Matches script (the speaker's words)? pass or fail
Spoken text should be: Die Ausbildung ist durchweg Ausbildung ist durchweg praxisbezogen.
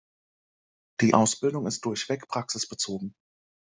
fail